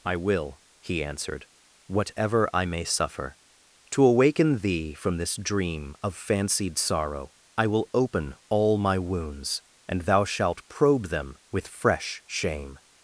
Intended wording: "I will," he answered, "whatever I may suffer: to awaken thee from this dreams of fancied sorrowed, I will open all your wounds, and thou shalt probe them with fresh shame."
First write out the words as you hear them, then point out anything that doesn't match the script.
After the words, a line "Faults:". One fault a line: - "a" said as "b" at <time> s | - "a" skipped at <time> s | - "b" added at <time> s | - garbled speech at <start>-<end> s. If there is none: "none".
"I will," he answered, "whatever I may suffer: to awaken thee from this dream of fancied sorrow, I will open all my wounds, and thou shalt probe them with fresh shame."
Faults:
- "dreams" said as "dream" at 5.3 s
- "sorrowed" said as "sorrow" at 6.8 s
- "your" said as "my" at 8.8 s